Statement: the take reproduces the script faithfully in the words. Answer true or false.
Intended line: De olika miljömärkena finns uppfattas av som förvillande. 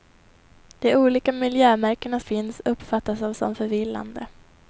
true